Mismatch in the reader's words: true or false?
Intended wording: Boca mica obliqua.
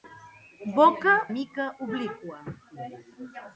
false